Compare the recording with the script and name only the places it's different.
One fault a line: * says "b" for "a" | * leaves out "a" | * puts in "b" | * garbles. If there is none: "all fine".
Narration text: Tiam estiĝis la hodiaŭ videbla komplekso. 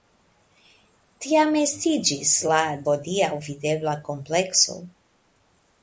all fine